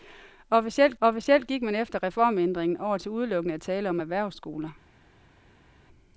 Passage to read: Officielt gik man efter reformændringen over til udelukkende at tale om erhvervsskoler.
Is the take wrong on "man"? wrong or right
right